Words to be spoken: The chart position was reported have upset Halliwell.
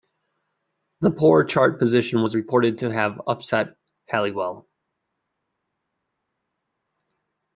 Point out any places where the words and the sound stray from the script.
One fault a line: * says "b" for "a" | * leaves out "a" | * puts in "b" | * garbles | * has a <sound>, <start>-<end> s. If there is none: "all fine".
* puts in "poor"
* puts in "to"